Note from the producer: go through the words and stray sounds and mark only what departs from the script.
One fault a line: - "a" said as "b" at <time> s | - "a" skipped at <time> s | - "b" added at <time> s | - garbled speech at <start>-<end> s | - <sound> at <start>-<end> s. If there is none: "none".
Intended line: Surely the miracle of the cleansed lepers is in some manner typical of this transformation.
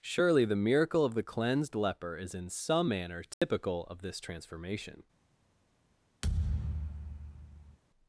- "lepers" said as "leper" at 1.8 s
- dropout at 3.3-3.4 s
- thud at 6.2-7.8 s